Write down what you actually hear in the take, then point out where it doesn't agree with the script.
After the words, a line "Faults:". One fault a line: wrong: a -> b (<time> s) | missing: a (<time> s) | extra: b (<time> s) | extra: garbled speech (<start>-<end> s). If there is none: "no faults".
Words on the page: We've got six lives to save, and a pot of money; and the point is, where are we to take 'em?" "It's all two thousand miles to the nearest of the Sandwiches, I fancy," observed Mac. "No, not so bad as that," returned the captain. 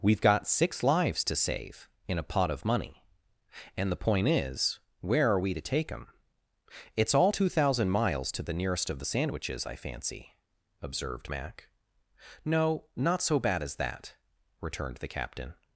We've got six lives to save, in a pot of money; and the point is, where are we to take 'em?" "It's all two thousand miles to the nearest of the Sandwiches, I fancy," observed Mac. "No, not so bad as that," returned the captain.
Faults:
wrong: and -> in (2.1 s)